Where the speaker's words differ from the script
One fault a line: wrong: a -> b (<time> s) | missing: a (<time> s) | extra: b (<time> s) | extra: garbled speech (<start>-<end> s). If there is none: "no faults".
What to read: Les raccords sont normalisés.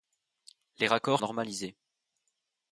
missing: sont (1.2 s)